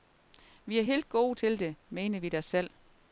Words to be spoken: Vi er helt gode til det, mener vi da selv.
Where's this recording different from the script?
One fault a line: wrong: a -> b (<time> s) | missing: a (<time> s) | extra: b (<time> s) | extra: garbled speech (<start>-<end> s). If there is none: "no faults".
no faults